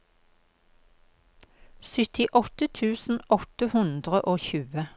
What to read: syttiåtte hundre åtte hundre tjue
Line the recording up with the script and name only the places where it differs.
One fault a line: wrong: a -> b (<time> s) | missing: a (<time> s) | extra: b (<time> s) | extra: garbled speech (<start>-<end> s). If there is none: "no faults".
wrong: hundre -> tusen (2.8 s)
extra: og (4.2 s)